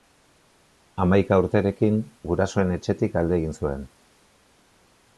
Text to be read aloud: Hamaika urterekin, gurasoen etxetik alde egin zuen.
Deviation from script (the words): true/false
false